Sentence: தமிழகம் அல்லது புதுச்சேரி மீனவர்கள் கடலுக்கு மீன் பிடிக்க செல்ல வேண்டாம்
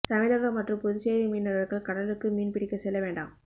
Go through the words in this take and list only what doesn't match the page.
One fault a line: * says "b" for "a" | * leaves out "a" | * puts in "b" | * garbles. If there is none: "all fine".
* says "மற்றும்" for "அல்லது"